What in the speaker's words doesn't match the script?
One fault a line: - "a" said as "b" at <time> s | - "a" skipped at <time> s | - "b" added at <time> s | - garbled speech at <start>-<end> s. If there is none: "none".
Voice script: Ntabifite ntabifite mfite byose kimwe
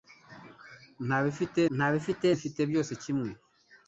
none